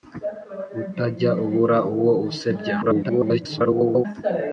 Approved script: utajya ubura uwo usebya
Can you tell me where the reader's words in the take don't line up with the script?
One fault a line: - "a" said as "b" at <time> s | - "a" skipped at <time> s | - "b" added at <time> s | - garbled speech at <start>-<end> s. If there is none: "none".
- garbled speech at 2.8-4.1 s